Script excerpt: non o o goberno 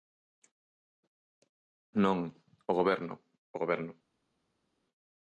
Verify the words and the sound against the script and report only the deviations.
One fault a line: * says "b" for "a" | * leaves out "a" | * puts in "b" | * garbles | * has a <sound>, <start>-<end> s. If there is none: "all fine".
* puts in "goberno"